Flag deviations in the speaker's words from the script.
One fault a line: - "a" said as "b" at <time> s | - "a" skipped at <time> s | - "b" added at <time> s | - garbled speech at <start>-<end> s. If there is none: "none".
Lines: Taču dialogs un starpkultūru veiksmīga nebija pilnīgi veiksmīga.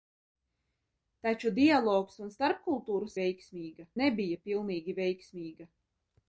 none